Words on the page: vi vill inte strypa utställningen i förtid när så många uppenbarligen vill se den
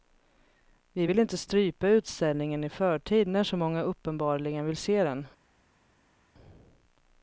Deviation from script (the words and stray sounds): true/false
false